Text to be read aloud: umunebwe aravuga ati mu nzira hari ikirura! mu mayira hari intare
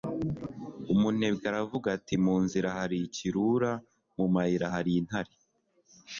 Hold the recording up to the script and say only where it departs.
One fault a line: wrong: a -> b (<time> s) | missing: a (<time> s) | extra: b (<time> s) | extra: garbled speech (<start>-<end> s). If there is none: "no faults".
no faults